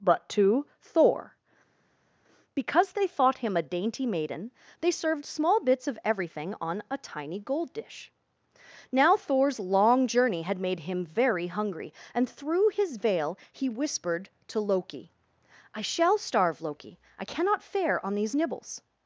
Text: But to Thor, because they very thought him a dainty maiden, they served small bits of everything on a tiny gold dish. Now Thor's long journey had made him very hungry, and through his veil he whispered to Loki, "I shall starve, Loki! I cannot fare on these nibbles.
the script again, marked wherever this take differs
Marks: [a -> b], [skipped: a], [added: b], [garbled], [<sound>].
But to Thor, because they [skipped: very] thought him a dainty maiden, they served small bits of everything on a tiny gold dish. Now Thor's long journey had made him very hungry, and through his veil he whispered to Loki, "I shall starve, Loki! I cannot fare on these nibbles.